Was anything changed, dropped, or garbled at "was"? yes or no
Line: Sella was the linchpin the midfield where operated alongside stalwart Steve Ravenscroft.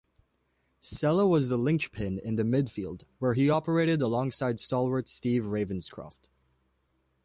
no